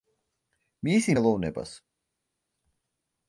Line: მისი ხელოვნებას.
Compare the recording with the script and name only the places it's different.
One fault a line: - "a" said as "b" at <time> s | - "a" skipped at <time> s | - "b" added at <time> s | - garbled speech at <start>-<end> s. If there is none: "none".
none